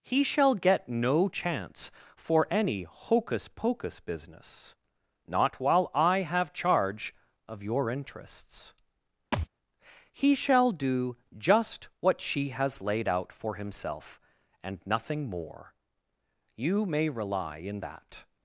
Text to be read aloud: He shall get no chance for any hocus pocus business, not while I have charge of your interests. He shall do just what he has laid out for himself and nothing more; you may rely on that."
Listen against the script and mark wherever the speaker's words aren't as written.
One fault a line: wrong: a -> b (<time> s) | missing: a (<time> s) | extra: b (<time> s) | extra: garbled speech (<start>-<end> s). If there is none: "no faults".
wrong: he -> she (12.2 s)
wrong: on -> in (17.6 s)